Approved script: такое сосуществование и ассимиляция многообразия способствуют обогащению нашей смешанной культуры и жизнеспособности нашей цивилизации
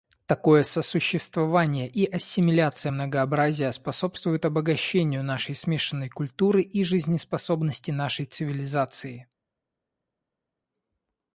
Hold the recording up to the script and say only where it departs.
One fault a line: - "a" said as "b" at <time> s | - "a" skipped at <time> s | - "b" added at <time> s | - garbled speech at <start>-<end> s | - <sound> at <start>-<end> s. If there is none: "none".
none